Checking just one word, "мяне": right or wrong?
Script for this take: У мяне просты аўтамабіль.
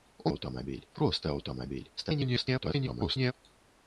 wrong